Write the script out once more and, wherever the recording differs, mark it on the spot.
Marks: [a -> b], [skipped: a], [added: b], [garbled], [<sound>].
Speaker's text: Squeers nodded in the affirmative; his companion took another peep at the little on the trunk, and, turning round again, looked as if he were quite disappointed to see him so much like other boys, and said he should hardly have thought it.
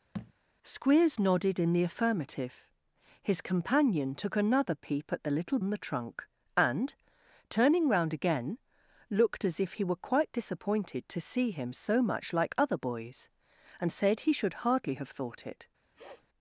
[thud] Squeers nodded in the affirmative; his companion took another peep at the little on the trunk, and, turning round again, looked as if he were quite disappointed to see him so much like other boys, and said he should hardly have thought it. [sniff]